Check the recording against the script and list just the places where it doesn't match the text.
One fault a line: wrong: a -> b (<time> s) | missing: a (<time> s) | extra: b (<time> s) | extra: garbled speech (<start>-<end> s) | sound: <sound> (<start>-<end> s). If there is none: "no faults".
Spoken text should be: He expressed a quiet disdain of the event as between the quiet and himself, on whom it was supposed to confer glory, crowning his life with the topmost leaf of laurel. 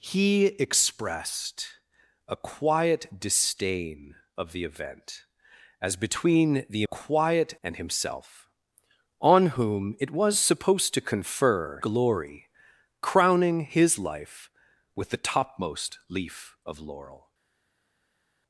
no faults